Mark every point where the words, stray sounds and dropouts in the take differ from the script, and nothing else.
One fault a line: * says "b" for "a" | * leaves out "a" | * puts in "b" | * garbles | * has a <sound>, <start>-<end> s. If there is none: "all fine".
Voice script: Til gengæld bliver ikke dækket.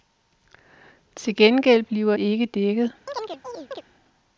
* has a chirp, 3.1-3.8 s